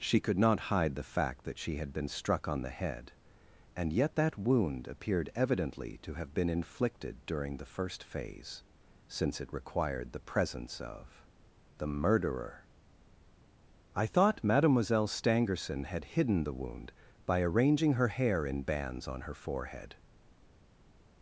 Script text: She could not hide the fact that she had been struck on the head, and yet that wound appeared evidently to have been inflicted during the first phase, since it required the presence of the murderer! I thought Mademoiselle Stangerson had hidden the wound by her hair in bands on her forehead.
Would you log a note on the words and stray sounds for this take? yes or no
yes